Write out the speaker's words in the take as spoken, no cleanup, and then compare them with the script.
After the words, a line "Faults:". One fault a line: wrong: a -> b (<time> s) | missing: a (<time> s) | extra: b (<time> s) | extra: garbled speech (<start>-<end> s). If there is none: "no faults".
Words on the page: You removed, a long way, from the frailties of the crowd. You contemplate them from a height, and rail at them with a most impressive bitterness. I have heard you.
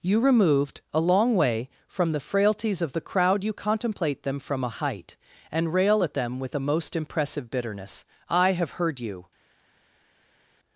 You removed, a long way, from the frailties of the crowd. You contemplate them from a height, and rail at them with a most impressive bitterness. I have heard you.
Faults:
no faults